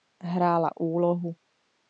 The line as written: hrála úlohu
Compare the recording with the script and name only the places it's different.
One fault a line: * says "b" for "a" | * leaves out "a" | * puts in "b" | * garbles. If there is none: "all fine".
all fine